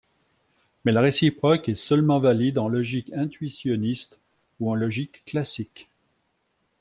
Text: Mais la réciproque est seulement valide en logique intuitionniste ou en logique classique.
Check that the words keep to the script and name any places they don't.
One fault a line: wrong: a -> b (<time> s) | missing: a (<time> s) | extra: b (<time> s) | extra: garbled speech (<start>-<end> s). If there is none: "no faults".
no faults